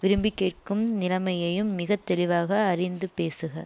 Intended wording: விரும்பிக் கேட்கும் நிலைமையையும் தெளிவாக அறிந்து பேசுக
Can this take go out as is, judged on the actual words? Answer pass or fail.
fail